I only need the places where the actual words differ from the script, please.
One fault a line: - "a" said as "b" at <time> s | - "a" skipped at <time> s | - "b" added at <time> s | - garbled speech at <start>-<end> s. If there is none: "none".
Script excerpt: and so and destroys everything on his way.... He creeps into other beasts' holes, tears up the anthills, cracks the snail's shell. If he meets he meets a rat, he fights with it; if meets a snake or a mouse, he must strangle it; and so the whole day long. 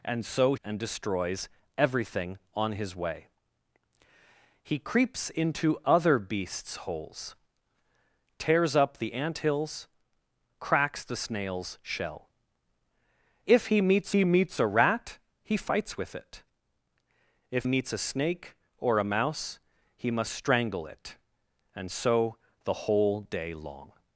none